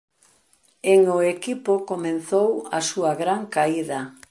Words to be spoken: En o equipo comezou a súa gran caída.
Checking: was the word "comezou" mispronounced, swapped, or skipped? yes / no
no